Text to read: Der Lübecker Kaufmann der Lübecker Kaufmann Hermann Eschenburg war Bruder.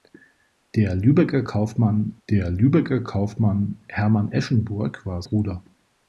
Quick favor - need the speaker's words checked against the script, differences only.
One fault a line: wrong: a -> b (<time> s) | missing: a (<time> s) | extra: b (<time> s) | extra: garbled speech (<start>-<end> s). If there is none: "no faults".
no faults